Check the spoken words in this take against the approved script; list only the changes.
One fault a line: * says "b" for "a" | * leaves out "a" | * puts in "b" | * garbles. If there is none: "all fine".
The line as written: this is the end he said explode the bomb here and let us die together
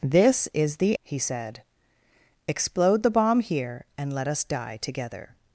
* leaves out "end"